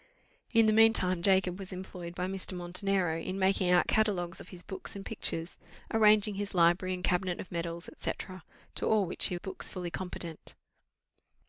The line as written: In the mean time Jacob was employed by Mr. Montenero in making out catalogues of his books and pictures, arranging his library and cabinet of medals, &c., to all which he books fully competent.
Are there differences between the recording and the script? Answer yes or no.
no